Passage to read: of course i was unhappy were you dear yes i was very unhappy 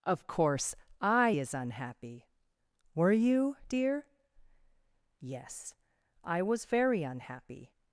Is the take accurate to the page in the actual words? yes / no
no